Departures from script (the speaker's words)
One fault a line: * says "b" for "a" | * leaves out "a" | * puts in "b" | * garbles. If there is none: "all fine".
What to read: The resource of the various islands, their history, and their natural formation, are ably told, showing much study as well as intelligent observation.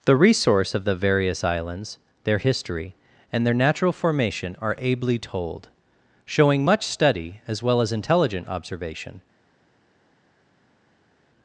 all fine